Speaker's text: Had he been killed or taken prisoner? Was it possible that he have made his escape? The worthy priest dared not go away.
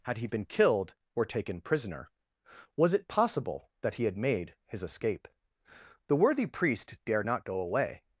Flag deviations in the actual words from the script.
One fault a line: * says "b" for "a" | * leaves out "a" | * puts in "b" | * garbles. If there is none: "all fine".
* says "had" for "have"